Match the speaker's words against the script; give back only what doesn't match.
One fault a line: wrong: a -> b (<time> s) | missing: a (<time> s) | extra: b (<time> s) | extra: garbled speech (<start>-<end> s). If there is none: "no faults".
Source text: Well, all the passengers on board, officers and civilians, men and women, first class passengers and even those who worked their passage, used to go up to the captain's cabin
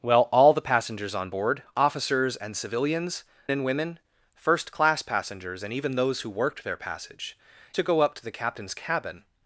missing: men (3.2 s)
missing: used (7.4 s)